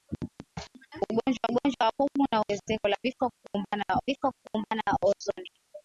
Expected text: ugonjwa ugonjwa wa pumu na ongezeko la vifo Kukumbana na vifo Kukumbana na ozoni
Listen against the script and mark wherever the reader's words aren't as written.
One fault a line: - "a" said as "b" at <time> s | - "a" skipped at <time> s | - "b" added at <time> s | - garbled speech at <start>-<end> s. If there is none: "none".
none